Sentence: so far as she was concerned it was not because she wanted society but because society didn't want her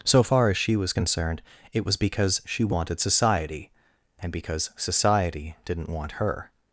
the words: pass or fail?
fail